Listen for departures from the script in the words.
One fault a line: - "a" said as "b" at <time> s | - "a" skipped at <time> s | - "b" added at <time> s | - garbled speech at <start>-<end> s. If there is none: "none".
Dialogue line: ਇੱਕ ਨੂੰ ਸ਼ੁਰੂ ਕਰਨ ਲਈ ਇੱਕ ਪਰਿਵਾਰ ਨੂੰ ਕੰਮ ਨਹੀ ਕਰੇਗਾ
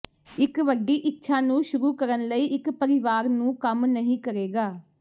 - "ਵੱਡੀ ਇੱਛਾ" added at 0.6 s